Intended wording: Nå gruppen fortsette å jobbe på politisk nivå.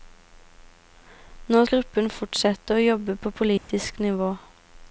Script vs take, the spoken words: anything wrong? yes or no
no